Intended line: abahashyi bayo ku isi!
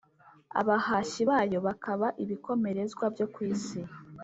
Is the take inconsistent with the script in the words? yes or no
yes